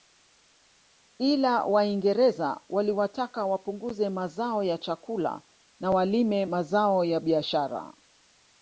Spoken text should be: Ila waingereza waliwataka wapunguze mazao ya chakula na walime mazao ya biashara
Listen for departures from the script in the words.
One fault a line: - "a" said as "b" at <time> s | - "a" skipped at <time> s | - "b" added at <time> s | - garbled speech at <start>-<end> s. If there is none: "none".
none